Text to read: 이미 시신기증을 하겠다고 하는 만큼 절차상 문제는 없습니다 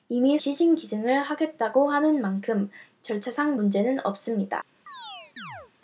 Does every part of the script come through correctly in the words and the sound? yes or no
no